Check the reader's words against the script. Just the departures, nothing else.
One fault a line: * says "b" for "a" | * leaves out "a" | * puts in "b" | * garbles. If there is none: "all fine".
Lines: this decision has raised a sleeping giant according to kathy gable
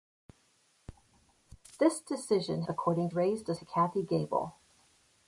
* says "according" for "has"
* leaves out "sleeping giant according"